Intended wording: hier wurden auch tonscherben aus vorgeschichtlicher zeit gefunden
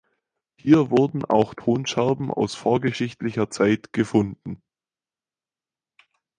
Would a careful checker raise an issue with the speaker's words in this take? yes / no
no